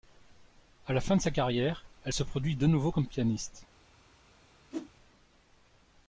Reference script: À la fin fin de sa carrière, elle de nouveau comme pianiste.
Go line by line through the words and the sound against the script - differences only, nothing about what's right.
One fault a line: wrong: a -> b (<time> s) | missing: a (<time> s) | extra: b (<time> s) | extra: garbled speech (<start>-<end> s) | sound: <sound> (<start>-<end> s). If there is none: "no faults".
missing: fin (1.1 s)
extra: se produit (2.1 s)
sound: whoosh (4.7-4.9 s)